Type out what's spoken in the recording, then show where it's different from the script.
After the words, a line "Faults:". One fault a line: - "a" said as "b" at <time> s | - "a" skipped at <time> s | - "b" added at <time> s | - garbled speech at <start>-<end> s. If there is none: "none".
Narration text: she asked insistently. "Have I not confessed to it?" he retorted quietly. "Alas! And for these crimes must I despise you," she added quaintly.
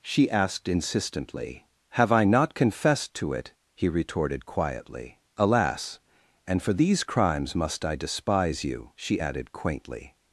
she asked insistently. "Have I not confessed to it?" he retorted quietly. "Alas! And for these crimes must I despise you," she added quaintly.
Faults:
none